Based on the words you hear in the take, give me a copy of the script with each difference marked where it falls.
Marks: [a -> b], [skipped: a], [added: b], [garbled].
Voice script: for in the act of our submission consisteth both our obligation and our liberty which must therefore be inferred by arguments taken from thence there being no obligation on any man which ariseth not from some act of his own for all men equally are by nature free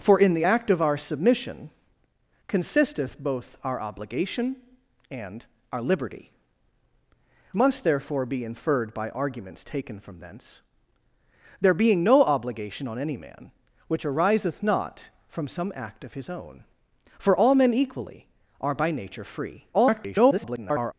for in the act of our submission consisteth both our obligation and our liberty [skipped: which] must therefore be inferred by arguments taken from thence there being no obligation on any man which ariseth not from some act of his own for all men equally are by nature free [garbled]